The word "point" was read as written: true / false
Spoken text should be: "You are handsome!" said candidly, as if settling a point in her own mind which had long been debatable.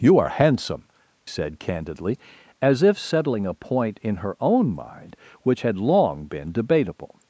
true